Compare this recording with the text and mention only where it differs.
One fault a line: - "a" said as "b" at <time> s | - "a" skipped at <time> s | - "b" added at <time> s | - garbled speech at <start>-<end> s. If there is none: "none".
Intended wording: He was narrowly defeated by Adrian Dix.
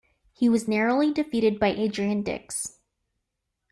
none